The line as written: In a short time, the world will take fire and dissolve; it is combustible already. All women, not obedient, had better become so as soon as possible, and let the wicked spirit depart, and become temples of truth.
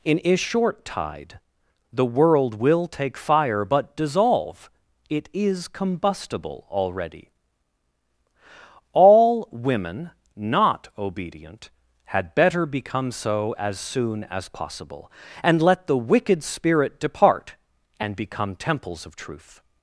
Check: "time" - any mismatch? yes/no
yes